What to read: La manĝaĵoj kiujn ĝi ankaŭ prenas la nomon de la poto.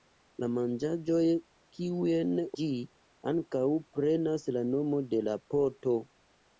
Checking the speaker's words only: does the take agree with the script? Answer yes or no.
yes